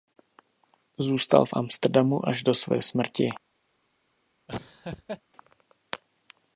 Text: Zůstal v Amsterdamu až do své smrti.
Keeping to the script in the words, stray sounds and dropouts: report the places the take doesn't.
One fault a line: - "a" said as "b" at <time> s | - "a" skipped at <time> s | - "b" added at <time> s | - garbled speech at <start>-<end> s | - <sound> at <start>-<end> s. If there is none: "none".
- laugh at 4.5-5.2 s